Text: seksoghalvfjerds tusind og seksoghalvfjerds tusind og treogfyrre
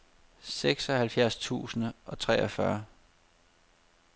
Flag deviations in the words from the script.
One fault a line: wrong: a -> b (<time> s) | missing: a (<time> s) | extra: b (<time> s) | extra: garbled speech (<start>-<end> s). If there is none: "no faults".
missing: seksoghalvfjerds tusind og (2.2 s)